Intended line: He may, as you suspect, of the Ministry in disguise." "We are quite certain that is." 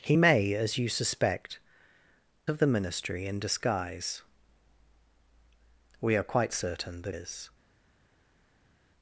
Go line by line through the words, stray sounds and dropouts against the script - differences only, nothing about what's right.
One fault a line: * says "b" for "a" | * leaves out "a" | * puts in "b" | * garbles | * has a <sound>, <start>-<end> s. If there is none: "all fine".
all fine